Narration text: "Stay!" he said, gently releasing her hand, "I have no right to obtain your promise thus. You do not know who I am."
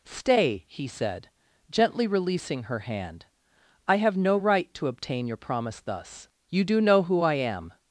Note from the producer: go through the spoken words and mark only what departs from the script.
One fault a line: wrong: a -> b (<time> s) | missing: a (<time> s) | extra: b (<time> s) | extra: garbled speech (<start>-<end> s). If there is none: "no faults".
missing: not (6.8 s)